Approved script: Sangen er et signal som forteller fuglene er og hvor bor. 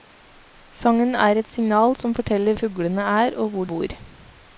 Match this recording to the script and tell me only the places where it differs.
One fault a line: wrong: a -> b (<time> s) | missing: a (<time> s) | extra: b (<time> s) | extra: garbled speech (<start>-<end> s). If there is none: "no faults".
no faults